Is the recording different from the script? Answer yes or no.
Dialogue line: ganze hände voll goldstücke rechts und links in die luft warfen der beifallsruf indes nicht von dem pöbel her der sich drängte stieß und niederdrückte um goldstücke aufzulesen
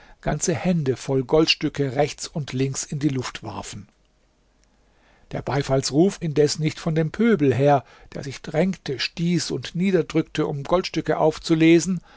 no